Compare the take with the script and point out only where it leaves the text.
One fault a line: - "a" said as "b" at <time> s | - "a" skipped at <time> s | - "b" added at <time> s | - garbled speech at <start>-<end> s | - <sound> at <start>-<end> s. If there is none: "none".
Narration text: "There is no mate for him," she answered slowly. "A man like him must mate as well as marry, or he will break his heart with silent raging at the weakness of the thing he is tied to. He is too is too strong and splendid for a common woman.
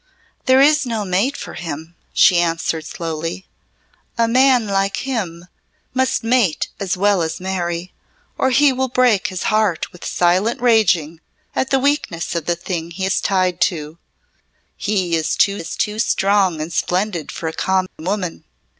- dropout at 17.9-18.0 s